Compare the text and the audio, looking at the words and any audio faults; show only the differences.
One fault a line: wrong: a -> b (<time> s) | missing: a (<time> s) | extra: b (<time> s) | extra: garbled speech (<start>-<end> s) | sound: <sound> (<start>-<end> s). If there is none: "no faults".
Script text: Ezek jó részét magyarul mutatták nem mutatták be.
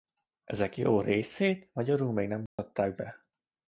wrong: mutatták -> még (2.1 s)
sound: dropout (2.5-2.6 s)